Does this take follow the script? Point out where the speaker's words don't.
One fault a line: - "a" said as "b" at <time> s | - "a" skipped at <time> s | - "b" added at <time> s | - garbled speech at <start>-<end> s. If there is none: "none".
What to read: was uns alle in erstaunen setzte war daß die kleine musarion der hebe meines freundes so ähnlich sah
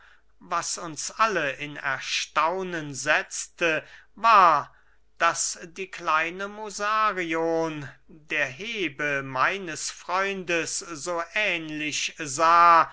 none